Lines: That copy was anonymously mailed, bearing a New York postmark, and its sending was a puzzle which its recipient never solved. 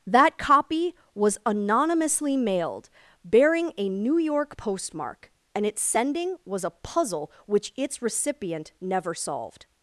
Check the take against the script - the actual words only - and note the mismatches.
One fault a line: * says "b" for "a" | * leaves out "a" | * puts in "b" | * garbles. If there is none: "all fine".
all fine